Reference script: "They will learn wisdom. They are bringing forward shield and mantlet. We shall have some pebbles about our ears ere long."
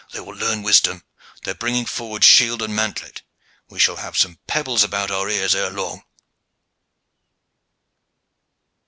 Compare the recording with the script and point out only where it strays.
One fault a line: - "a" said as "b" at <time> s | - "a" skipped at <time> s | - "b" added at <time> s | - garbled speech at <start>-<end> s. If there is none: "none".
none